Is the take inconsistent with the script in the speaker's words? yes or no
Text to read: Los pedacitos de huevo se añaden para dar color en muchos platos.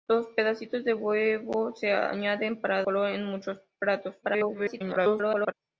yes